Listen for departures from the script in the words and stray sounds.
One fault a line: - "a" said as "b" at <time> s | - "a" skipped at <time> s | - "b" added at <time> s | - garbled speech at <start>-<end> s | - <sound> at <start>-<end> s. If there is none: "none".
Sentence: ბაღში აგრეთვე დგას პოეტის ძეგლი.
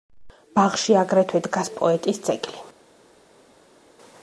none